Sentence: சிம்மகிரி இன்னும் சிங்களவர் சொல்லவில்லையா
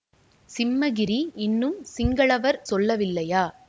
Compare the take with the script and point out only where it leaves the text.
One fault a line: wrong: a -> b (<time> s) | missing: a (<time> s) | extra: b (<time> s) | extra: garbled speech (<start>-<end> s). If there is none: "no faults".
no faults